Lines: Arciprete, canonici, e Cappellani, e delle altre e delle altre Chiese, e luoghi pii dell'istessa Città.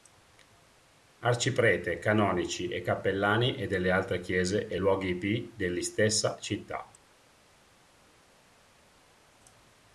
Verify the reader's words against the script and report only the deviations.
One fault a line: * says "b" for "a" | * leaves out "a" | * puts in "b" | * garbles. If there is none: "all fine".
* leaves out "e delle altre"